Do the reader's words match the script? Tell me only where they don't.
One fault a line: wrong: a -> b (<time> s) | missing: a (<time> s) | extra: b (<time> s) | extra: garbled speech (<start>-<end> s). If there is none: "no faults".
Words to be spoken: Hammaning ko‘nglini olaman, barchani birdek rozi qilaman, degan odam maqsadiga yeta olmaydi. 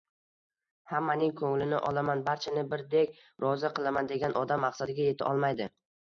no faults